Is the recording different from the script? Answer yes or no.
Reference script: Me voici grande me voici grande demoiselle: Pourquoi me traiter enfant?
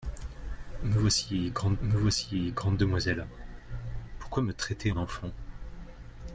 no